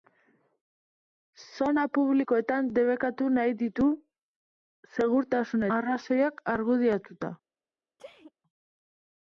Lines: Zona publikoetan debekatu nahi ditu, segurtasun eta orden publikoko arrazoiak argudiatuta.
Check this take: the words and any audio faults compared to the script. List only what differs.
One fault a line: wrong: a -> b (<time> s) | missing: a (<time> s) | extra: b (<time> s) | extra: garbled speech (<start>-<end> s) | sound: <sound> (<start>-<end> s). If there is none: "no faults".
missing: eta orden publikoko (5.7 s)
sound: sneeze (8.0-8.3 s)